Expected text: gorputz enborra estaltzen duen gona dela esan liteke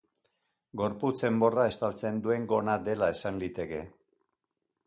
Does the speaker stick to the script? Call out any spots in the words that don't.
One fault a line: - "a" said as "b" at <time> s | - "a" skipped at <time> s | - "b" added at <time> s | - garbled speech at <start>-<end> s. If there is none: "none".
none